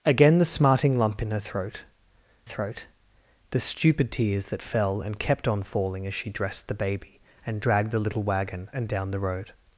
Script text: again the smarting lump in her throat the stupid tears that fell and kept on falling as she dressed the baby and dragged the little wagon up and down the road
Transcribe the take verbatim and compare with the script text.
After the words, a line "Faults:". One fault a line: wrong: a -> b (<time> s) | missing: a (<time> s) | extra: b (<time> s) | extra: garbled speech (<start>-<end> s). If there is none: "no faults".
again the smarting lump in her throat throat the stupid tears that fell and kept on falling as she dressed the baby and dragged the little wagon and down the road
Faults:
extra: throat (2.4 s)
missing: up (8.7 s)